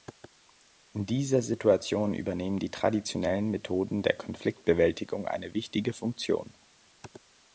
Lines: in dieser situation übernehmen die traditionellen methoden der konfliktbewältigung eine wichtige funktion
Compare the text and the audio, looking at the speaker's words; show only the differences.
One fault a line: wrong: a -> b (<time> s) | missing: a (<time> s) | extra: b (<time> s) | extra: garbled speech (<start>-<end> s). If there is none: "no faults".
no faults